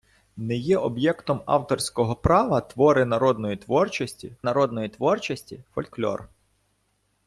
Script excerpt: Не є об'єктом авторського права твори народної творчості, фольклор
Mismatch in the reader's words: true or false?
true